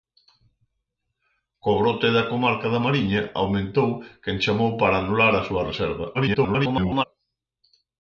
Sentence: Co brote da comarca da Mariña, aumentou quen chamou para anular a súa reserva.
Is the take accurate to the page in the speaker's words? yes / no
no